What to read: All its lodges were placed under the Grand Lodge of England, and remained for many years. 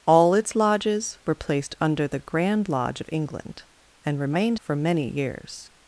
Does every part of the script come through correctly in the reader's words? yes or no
yes